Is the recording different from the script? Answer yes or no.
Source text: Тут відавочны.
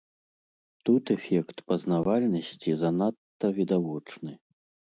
yes